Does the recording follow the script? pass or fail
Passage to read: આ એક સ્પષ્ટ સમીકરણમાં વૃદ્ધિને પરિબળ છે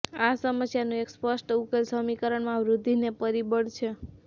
fail